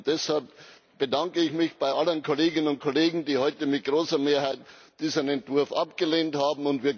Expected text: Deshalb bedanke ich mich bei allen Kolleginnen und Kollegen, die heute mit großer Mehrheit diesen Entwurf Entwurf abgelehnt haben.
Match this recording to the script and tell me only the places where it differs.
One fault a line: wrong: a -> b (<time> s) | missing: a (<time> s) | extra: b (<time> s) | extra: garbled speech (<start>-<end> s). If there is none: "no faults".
missing: Entwurf (5.7 s)